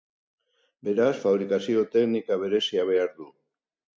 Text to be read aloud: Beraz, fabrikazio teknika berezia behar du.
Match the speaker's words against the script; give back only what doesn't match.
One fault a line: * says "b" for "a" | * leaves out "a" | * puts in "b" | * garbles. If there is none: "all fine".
all fine